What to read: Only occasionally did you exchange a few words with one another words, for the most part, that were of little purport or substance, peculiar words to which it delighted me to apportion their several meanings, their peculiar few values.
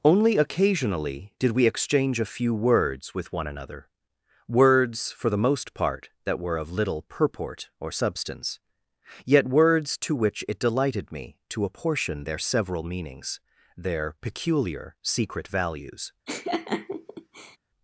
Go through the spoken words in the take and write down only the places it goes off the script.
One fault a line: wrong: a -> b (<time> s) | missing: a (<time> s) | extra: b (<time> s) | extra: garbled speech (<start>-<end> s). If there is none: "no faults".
wrong: you -> we (1.5 s)
wrong: peculiar -> yet (9.2 s)
wrong: few -> secret (15.0 s)